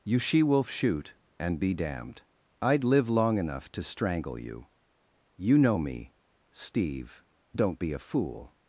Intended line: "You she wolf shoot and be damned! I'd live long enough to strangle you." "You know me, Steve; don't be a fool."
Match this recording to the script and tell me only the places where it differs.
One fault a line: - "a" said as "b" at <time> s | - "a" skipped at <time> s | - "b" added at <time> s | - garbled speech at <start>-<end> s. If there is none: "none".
none